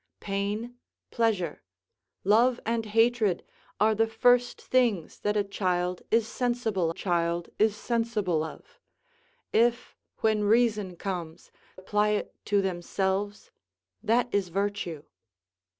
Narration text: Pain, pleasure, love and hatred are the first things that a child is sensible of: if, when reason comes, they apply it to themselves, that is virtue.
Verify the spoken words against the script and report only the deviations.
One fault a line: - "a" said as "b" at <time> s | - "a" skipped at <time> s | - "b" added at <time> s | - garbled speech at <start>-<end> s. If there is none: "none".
- "child is sensible" added at 6.9 s
- "they" skipped at 11.5 s